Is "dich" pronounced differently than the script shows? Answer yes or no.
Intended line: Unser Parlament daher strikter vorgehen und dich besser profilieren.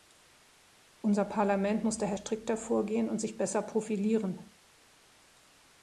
yes